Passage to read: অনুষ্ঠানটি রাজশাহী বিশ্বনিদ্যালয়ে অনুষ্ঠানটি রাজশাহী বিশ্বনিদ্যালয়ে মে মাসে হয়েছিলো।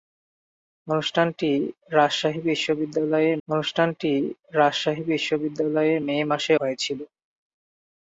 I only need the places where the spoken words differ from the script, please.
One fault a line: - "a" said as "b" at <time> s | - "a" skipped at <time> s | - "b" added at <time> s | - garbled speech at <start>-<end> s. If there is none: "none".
none